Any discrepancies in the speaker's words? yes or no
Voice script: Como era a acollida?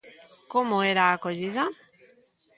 no